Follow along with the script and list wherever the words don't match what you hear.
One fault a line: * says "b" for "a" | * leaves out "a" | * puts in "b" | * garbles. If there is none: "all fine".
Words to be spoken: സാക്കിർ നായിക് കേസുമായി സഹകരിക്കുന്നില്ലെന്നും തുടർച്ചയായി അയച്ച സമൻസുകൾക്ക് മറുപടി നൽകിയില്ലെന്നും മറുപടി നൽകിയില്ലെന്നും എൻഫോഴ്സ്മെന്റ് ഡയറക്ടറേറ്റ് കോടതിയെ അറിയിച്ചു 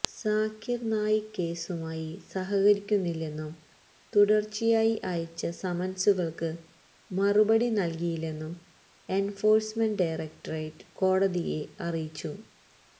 * leaves out "മറുപടി നൽകിയില്ലെന്നും"